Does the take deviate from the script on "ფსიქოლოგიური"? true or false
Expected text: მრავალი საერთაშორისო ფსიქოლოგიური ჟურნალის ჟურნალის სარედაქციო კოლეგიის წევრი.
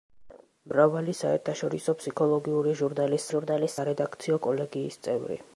false